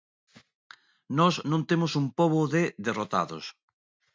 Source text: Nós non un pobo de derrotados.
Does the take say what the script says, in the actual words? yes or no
no